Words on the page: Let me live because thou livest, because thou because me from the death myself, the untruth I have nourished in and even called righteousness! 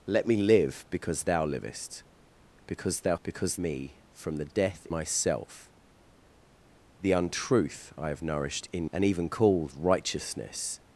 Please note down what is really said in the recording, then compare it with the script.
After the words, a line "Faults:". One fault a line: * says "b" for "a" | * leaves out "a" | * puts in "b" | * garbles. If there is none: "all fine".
Let me live because thou livest, because thou because me from the death myself, the untruth I have nourished in and even called righteousness!
Faults:
all fine